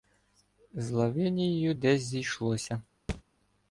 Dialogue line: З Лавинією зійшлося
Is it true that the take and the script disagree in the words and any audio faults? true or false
true